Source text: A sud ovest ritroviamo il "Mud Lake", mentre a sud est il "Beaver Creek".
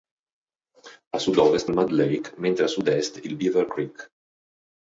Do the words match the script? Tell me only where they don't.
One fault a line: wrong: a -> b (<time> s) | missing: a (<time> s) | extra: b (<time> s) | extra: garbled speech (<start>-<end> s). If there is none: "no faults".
missing: ritroviamo (1.7 s)